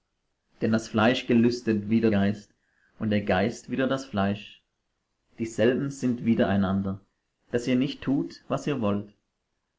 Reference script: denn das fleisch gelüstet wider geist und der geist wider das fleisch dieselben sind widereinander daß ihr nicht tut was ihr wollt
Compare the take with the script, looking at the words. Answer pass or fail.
pass